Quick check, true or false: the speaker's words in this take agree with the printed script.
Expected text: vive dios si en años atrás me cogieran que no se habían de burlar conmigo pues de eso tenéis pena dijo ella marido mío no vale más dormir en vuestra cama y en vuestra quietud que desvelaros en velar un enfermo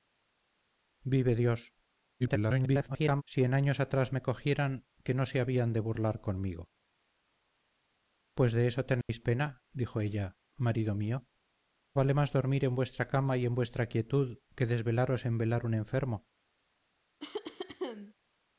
false